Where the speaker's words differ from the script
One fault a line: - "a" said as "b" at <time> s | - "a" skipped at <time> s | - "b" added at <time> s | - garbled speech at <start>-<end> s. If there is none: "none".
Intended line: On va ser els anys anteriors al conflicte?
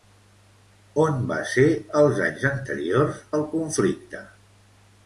none